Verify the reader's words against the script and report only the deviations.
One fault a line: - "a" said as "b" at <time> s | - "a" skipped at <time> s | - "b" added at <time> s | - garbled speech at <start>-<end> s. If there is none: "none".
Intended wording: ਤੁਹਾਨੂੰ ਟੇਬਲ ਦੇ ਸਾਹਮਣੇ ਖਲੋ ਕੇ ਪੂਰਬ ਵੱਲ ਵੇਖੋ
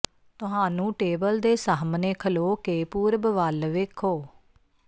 none